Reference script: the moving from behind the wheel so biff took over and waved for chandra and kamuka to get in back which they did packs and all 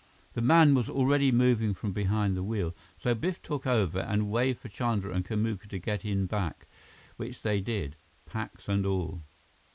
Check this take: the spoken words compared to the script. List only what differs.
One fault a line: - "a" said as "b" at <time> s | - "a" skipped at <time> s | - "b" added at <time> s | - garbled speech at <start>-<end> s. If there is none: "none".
- "man was already" added at 0.4 s